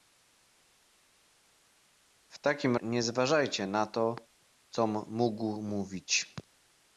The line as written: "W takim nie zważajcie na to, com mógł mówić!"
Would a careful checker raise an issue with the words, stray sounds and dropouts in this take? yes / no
no